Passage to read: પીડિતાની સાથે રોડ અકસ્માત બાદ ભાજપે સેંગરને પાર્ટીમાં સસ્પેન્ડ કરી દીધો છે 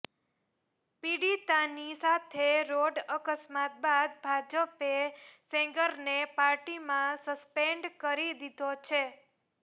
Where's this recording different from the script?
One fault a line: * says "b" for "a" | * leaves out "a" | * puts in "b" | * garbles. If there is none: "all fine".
all fine